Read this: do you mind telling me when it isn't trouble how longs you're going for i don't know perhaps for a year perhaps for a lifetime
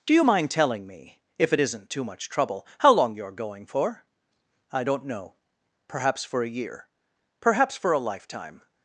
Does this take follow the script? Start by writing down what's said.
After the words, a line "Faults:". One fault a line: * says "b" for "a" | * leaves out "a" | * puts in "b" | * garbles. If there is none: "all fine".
do you mind telling me if it isn't too much trouble how long you're going for i don't know perhaps for a year perhaps for a lifetime
Faults:
* says "if" for "when"
* puts in "too much"
* says "long" for "longs"